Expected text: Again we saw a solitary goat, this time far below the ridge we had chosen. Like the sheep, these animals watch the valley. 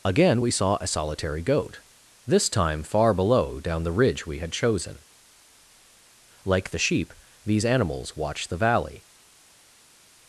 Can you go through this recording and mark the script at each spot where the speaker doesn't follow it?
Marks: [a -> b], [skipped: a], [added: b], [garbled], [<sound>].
Again we saw a solitary goat, this time far below [added: down] the ridge we had chosen. Like the sheep, these animals watch the valley.